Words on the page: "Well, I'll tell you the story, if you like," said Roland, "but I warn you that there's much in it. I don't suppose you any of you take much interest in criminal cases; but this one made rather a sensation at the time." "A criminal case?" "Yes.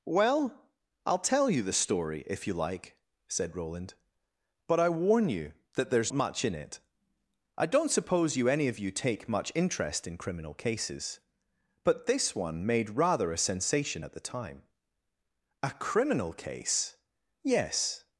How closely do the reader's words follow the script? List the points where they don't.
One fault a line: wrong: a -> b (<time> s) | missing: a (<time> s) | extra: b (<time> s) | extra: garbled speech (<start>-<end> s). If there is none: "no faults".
no faults